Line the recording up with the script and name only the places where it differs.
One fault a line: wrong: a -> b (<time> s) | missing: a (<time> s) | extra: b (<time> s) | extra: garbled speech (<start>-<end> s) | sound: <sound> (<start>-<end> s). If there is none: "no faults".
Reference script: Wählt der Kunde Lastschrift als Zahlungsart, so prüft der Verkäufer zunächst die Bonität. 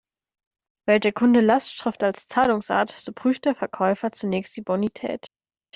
no faults